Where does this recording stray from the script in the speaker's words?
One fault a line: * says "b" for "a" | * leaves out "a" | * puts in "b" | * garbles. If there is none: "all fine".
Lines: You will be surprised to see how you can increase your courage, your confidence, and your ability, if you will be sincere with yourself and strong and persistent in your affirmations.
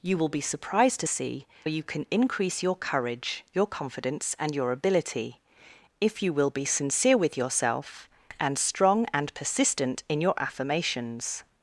* leaves out "how"